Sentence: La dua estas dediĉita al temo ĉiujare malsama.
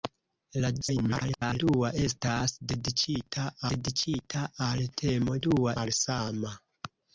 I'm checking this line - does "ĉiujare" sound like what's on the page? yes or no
no